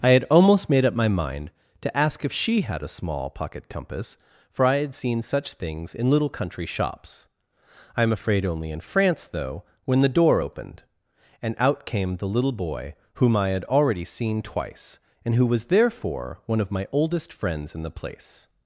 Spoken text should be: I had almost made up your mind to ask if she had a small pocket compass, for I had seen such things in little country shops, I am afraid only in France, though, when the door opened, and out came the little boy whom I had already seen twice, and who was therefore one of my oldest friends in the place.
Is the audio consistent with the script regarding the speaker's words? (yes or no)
no